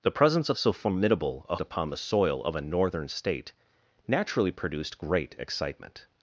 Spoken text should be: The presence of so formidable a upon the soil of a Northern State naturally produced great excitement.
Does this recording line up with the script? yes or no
yes